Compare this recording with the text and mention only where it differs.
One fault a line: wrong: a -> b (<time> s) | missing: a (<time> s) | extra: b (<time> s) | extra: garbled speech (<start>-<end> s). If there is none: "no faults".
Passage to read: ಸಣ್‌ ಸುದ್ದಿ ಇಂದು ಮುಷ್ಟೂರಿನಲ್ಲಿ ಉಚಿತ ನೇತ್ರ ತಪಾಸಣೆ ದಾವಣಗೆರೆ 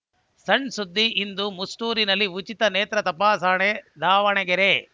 no faults